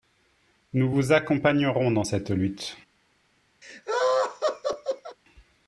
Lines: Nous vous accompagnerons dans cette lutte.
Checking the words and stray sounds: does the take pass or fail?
fail